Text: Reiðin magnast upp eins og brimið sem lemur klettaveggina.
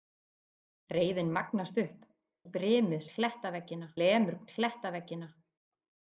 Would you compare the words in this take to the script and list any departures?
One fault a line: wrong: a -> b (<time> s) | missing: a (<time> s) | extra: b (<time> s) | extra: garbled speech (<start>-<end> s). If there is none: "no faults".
missing: eins (2.1 s)
wrong: sem -> klettaveggina (3.1 s)